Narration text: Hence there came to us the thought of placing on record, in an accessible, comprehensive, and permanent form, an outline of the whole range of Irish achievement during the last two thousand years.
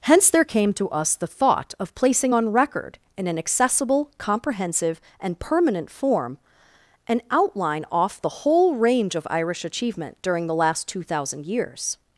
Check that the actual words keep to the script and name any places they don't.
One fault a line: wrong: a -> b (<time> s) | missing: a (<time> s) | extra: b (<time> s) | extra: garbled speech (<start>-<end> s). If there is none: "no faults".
wrong: of -> off (7.9 s)